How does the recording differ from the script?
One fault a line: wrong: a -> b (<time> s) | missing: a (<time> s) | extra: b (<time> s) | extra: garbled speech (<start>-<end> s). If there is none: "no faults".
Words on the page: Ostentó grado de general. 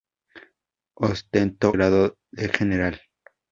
no faults